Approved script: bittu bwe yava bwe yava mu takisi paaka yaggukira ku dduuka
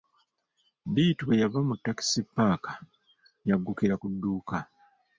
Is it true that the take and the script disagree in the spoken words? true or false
true